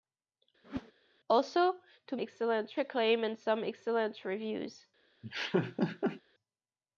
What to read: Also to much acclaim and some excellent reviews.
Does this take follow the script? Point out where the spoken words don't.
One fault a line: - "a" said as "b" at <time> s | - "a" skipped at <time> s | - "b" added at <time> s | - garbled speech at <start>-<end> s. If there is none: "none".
- "much" said as "excellent" at 2.2 s